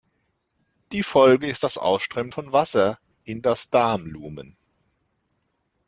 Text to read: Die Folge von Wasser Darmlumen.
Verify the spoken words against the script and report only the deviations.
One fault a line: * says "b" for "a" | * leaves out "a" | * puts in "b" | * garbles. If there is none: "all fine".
* puts in "ist das Ausströmen"
* puts in "in das"